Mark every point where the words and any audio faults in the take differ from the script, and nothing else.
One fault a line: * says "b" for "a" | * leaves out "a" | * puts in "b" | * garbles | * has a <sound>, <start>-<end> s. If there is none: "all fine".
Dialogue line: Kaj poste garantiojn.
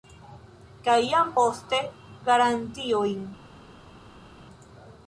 * puts in "jam"